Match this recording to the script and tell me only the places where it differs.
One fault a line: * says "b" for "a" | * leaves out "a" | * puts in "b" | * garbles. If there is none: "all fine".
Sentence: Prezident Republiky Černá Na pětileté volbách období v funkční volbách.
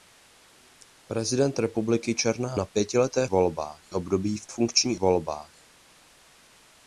all fine